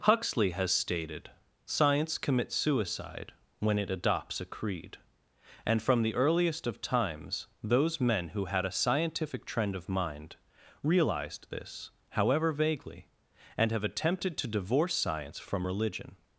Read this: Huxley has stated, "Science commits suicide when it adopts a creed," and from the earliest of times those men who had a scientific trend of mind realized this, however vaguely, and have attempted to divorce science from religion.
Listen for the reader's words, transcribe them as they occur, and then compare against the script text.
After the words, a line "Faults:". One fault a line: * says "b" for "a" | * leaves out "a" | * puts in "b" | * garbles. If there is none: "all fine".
Huxley has stated, "Science commits suicide when it adopts a creed," and from the earliest of times those men who had a scientific trend of mind realized this, however vaguely, and have attempted to divorce science from religion.
Faults:
all fine